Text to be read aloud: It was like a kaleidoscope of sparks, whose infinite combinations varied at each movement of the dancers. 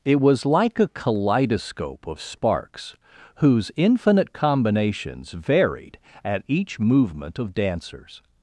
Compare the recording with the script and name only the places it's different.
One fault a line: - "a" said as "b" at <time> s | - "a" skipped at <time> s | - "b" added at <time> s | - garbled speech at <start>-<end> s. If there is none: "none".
- "the" skipped at 7.5 s